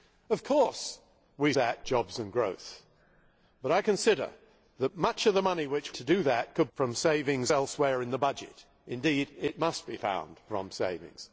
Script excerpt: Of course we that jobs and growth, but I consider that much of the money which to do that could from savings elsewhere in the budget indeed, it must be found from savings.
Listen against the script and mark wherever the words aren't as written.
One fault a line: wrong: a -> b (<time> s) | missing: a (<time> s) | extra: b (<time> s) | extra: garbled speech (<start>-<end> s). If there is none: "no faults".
no faults